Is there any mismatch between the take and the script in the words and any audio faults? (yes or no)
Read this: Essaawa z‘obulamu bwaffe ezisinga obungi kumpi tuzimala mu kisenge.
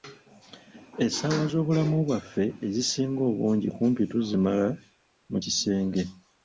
no